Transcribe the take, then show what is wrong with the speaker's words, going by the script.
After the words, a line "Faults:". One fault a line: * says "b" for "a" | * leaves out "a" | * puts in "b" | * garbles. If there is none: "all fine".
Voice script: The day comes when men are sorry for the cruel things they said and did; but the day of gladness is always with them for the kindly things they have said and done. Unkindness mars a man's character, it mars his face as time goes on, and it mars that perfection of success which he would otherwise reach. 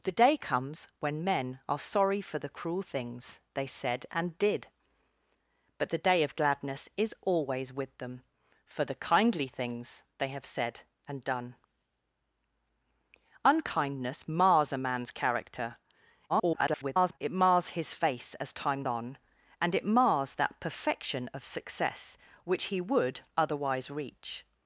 The day comes when men are sorry for the cruel things they said and did; but the day of gladness is always with them for the kindly things they have said and done. Unkindness mars a man's character, [garbled] it mars his face as time on, and it mars that perfection of success which he would otherwise reach.
Faults:
* garbles
* leaves out "goes"